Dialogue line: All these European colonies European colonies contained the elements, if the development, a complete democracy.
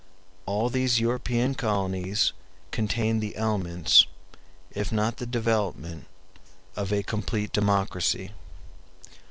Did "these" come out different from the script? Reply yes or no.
no